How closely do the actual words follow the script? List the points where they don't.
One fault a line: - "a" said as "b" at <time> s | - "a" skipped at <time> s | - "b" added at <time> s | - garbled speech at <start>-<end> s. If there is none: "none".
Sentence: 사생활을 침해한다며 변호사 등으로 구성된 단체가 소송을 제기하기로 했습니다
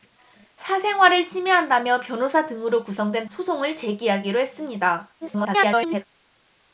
- "단체가" skipped at 3.2 s
- garbled speech at 5.2-6.0 s